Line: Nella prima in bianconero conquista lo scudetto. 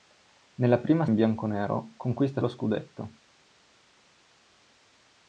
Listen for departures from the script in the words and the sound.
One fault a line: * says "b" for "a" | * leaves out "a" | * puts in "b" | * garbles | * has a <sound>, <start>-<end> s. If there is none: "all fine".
all fine